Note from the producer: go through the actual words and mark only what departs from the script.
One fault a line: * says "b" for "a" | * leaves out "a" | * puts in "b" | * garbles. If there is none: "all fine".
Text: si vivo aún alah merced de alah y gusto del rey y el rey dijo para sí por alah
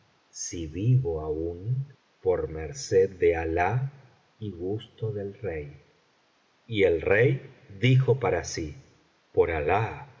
* says "por" for "alah"